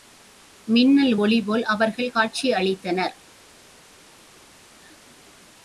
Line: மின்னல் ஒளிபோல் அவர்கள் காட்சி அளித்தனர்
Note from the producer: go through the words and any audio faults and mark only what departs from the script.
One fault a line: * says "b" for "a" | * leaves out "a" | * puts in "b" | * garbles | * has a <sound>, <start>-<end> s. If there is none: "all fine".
all fine